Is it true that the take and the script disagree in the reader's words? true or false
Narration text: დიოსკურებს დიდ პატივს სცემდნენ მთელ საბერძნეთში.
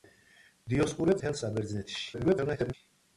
true